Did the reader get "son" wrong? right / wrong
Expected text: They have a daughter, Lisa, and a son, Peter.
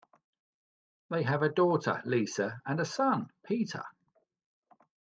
right